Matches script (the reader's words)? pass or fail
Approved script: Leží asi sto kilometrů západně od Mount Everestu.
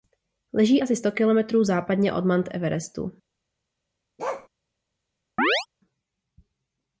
pass